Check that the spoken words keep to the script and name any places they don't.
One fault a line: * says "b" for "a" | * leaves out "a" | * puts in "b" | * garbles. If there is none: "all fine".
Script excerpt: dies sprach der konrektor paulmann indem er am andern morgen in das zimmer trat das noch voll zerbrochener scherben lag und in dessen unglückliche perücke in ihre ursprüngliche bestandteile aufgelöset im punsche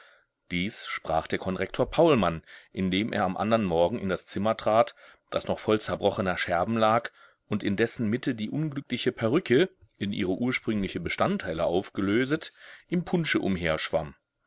* puts in "mitte die"